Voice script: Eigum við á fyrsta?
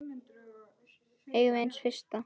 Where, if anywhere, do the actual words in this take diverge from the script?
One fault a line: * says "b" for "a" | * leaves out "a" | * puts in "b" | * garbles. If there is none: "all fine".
* puts in "séns"